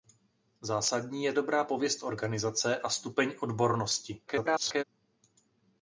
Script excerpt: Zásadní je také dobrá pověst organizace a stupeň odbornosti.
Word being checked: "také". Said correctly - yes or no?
no